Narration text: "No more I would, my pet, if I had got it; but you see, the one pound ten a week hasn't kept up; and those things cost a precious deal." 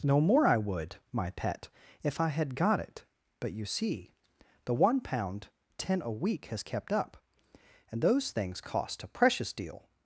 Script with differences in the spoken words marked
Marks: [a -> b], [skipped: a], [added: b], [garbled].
"No more I would, my pet, if I had got it; but you see, the one pound ten a week [hasn't -> has] kept up; and those things cost a precious deal."